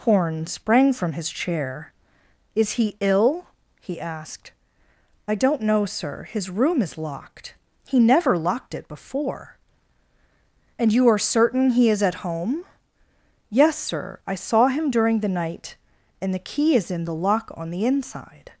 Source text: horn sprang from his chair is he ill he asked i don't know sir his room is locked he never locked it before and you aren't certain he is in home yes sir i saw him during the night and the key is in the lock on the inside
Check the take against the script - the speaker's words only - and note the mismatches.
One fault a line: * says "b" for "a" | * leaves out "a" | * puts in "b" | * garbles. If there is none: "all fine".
* says "are" for "aren't"
* says "at" for "in"